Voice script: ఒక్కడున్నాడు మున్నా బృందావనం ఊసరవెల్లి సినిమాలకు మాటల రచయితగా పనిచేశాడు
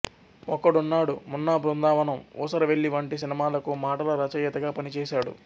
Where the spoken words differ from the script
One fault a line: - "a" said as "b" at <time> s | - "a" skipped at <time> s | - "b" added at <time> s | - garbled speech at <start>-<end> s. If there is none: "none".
- "వంటి" added at 3.0 s